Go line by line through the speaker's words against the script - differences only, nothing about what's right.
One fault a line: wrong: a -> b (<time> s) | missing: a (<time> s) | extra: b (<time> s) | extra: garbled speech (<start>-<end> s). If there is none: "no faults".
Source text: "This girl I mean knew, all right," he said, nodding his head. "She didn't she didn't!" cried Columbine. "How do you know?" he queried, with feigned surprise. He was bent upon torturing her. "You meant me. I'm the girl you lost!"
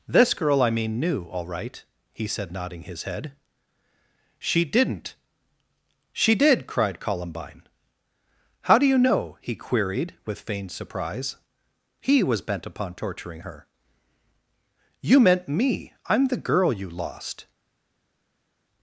wrong: didn't -> did (6.3 s)